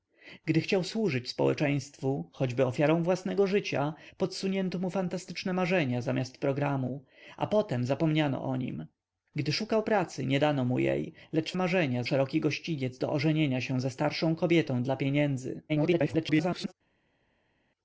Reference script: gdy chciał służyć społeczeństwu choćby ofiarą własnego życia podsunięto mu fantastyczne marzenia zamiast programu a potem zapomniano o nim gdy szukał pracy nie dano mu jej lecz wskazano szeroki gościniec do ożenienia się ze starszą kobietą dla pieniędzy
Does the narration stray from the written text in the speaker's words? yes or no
yes